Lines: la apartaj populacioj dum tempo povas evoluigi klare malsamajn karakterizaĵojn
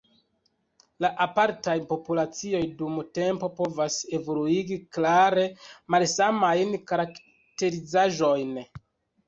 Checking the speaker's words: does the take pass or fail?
pass